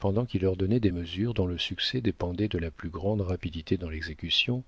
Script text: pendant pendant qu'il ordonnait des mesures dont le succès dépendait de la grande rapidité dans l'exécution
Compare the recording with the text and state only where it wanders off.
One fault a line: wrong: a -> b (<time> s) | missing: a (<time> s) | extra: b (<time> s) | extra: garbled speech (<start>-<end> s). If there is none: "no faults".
missing: pendant (0.2 s)
extra: plus (2.7 s)